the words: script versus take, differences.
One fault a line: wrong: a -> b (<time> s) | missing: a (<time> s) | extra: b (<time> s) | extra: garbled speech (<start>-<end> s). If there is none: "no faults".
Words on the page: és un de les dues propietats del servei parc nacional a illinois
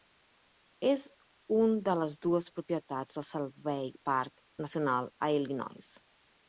no faults